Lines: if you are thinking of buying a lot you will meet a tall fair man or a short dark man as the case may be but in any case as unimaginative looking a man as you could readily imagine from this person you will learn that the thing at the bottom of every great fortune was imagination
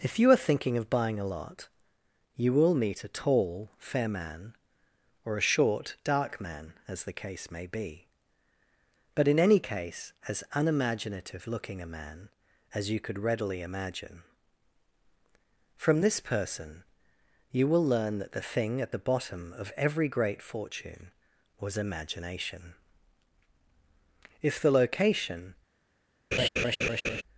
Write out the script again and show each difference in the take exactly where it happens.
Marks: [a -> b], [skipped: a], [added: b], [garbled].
if you are thinking of buying a lot you will meet a tall fair man or a short dark man as the case may be but in any case as unimaginative looking a man as you could readily imagine from this person you will learn that the thing at the bottom of every great fortune was imagination [added: if the location]